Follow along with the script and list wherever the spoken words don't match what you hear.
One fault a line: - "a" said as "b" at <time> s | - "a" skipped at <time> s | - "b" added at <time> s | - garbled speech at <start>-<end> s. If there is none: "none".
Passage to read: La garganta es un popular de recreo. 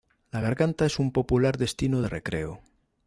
- "destino" added at 1.6 s